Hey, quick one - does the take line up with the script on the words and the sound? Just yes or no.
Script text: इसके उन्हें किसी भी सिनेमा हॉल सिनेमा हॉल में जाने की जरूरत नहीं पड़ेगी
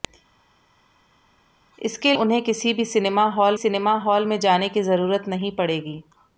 yes